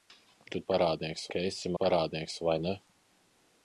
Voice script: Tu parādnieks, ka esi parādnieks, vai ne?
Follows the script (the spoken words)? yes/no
yes